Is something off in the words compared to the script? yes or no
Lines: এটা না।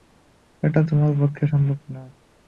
yes